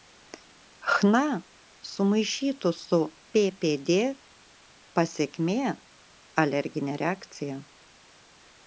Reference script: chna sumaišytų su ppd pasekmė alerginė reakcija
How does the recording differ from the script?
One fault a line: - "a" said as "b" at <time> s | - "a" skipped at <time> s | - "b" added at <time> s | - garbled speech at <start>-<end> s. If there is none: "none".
none